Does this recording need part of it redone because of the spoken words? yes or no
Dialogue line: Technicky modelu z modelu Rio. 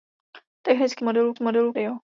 no